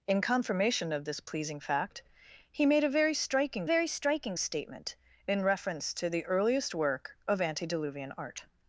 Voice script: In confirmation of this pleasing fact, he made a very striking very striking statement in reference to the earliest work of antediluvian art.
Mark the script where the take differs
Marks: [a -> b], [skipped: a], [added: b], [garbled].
In confirmation of this pleasing fact, he made a very striking very striking statement in reference to the earliest work of antediluvian art.